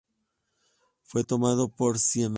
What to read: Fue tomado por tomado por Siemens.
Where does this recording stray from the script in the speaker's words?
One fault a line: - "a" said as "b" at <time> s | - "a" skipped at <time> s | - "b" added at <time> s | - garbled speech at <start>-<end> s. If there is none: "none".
- "tomado por" skipped at 2.0 s